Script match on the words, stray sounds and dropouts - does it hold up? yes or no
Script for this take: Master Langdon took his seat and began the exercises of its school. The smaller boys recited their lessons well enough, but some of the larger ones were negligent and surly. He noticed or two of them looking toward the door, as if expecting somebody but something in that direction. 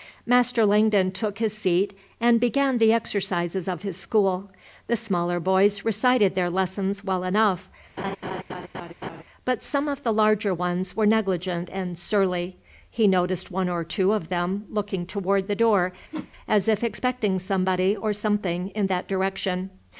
no